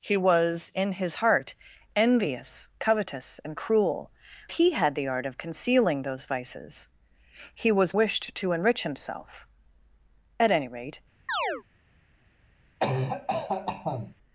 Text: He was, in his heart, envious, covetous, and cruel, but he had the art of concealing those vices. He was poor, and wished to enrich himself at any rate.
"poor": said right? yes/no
no